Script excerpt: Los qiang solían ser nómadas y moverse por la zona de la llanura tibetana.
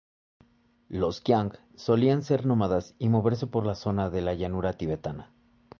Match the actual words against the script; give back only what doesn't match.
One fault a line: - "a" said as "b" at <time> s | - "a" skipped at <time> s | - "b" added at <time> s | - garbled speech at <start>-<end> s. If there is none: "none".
none